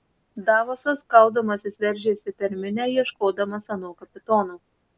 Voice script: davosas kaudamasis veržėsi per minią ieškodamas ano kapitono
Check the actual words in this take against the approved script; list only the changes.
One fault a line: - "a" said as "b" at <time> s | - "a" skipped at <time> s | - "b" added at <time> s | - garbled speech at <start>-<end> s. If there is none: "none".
none